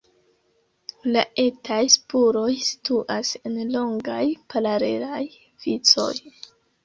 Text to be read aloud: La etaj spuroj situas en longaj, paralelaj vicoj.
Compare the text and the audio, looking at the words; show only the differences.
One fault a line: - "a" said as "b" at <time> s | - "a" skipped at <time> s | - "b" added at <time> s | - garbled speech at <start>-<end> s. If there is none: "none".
none